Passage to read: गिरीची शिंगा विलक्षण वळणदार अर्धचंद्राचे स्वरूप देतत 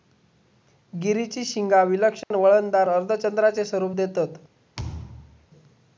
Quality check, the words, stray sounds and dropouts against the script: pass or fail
fail